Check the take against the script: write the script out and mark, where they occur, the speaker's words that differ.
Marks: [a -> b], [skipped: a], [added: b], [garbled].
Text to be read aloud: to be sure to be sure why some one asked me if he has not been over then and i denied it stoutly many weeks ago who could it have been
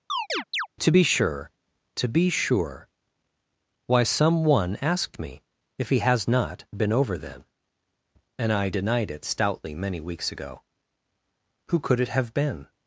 to be sure to be sure why some one asked me if he has not been over then and i denied it stoutly many weeks ago who could it have been